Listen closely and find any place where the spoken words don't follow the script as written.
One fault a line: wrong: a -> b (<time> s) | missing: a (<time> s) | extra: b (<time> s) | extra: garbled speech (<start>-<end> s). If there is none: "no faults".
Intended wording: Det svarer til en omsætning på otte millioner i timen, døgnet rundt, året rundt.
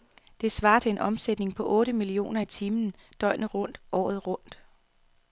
no faults